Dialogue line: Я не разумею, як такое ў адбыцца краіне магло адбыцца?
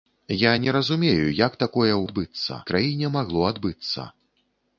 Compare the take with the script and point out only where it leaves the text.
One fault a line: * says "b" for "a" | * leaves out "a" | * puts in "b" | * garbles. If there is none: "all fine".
all fine